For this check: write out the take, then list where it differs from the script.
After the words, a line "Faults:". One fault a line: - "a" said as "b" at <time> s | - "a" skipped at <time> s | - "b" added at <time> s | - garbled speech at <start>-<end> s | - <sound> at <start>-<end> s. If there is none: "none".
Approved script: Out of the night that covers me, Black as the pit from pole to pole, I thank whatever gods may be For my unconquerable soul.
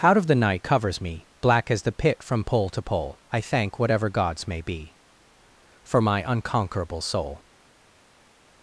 Out of the night covers me, Black as the pit from pole to pole, I thank whatever gods may be For my unconquerable soul.
Faults:
- "that" skipped at 0.6 s